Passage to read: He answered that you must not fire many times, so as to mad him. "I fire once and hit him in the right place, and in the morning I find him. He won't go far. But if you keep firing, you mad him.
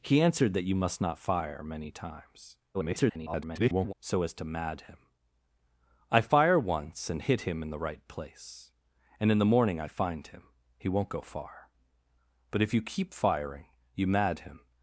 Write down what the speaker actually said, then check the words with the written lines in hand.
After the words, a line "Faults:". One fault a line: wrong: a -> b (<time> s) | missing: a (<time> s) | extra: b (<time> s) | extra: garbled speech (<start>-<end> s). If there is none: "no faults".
He answered that you must not fire many times, [garbled] so as to mad him. "I fire once and hit him in the right place, and in the morning I find him. He won't go far. But if you keep firing, you mad him.
Faults:
extra: garbled speech (2.7-3.9 s)